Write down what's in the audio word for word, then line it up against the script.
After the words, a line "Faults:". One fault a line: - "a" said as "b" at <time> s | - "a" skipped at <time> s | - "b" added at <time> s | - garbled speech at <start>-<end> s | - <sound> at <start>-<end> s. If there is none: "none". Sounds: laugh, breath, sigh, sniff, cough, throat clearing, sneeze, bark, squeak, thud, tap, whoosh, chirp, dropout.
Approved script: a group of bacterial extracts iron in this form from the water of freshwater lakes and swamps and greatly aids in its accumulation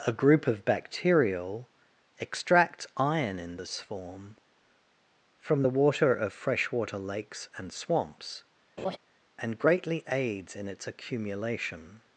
a group of bacterial extract iron in this form from the water of freshwater lakes and swamps and greatly aids in its accumulation
Faults:
- "extracts" said as "extract" at 2.2 s
- laugh at 8.8-9.0 s